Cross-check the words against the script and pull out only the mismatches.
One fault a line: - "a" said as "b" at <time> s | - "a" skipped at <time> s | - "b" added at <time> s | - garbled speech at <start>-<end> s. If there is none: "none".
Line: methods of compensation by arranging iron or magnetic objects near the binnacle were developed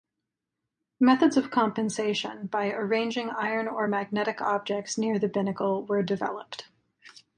none